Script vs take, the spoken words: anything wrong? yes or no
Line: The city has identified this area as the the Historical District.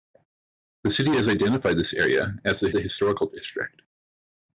no